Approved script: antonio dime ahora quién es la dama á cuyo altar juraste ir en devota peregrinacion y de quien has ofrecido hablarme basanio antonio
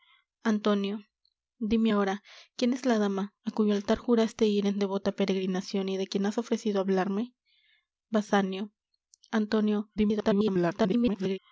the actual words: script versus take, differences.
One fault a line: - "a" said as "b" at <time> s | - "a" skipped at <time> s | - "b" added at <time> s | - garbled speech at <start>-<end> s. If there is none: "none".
- garbled speech at 10.0-11.4 s